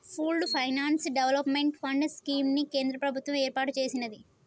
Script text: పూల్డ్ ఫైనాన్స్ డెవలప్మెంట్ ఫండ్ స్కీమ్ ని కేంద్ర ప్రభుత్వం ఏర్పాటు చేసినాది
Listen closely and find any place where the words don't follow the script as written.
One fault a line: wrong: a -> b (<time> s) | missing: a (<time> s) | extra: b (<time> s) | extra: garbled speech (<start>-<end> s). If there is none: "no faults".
no faults